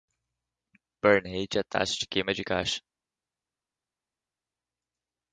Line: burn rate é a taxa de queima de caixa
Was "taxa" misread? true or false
false